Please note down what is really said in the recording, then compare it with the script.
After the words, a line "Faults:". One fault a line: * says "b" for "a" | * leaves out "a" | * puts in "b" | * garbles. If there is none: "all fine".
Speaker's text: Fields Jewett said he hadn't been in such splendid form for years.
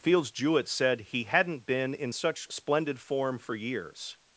Fields Jewett said he hadn't been in such splendid form for years.
Faults:
all fine